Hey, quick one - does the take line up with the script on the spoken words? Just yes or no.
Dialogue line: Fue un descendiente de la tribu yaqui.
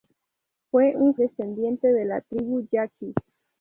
yes